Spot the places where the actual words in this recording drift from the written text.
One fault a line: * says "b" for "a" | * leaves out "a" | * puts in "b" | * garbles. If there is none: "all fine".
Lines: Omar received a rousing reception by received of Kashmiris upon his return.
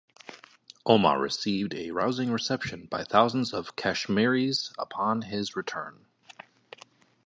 * says "thousands" for "received"